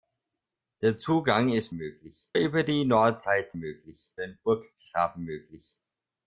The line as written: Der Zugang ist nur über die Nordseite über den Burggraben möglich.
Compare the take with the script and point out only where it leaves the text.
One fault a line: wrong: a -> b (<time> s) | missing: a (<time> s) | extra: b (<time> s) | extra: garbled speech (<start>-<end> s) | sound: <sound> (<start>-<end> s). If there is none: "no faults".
wrong: nur -> möglich (1.7 s)
wrong: über -> möglich (3.6 s)